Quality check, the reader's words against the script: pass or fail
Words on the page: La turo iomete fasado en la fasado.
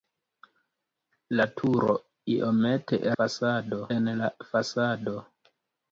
pass